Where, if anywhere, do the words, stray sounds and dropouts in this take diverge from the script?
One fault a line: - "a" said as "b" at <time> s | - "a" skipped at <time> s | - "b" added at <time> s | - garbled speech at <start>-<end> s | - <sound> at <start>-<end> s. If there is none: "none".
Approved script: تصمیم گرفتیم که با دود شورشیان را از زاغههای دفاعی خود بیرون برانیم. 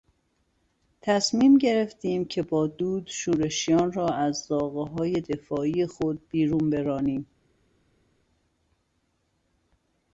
none